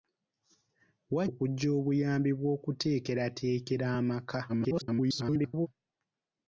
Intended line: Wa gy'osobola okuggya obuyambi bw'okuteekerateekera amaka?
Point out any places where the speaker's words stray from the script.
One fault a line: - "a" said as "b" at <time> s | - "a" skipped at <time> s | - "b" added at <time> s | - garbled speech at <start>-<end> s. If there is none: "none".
- "gy'osobola" skipped at 1.2 s
- garbled speech at 4.5-5.7 s